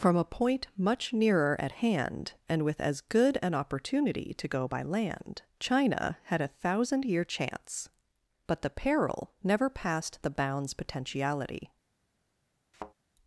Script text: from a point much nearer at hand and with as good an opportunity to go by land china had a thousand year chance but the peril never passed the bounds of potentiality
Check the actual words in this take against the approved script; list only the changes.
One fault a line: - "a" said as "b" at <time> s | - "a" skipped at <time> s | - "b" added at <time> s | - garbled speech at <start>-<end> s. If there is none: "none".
- "of" skipped at 10.7 s